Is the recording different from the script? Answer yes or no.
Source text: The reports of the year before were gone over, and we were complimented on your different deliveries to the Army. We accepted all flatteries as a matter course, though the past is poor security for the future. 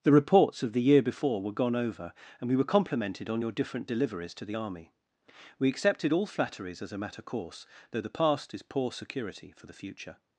no